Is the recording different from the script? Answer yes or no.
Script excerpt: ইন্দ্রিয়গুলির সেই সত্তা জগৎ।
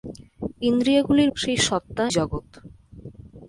no